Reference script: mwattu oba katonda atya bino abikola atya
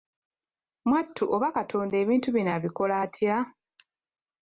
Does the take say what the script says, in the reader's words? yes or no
no